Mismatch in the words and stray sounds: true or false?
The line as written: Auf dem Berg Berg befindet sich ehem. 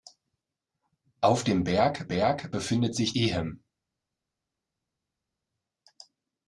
false